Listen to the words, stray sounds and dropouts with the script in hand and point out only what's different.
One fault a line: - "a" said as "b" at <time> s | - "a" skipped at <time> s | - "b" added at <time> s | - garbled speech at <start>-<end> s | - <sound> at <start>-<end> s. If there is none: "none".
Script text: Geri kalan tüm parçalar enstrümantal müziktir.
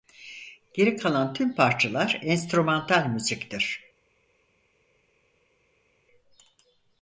none